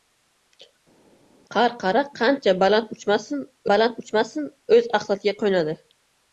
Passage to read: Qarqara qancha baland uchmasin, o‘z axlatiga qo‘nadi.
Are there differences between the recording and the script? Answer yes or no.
yes